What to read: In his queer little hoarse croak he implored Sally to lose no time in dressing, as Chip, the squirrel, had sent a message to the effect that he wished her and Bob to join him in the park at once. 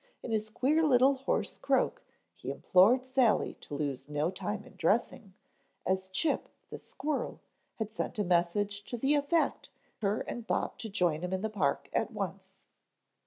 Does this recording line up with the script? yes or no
no